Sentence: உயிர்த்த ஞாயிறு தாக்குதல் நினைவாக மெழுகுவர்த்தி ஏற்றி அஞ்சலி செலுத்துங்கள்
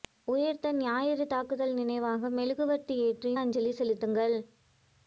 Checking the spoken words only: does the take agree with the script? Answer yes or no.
yes